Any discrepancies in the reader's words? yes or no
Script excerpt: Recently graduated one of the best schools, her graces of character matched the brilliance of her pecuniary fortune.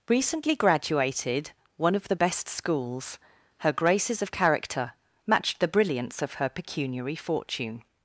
no